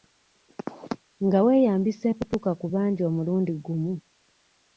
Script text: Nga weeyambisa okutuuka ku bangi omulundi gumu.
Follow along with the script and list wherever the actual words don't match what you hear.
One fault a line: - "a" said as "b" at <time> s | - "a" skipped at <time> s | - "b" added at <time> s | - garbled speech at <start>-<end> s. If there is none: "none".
none